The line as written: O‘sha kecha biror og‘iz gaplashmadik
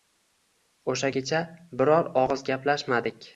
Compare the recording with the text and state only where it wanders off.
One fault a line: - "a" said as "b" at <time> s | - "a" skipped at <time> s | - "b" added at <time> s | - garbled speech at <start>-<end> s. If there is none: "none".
none